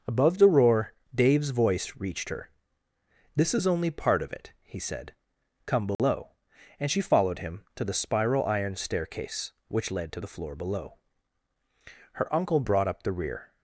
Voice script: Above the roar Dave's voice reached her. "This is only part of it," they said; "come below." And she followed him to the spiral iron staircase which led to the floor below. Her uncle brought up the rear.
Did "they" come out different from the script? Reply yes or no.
yes